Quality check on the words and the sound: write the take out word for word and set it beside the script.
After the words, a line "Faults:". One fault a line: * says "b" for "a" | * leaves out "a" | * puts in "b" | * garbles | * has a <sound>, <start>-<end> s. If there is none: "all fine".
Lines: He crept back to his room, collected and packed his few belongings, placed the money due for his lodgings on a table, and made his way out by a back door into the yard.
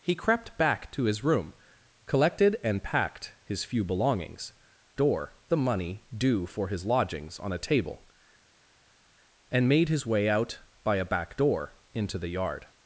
He crept back to his room, collected and packed his few belongings, door the money due for his lodgings on a table, and made his way out by a back door into the yard.
Faults:
* says "door" for "placed"